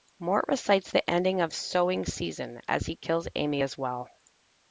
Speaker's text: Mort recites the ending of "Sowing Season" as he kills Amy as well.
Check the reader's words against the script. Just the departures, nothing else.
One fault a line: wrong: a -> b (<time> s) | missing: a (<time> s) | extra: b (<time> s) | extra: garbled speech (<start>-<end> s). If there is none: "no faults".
no faults